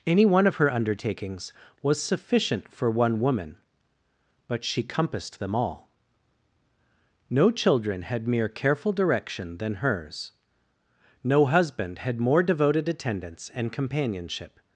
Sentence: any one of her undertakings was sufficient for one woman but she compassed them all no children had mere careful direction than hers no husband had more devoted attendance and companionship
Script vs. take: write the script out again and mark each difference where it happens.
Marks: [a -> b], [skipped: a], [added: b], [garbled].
any one of her undertakings was sufficient for one woman but she compassed them all no children had mere careful direction than hers no husband had more devoted attendance and companionship